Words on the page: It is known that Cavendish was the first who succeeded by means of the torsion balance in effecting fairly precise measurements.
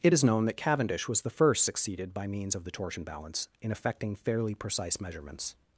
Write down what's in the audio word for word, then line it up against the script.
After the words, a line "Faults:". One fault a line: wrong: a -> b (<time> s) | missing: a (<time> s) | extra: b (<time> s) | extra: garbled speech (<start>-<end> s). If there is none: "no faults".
It is known that Cavendish was the first succeeded by means of the torsion balance in effecting fairly precise measurements.
Faults:
missing: who (1.6 s)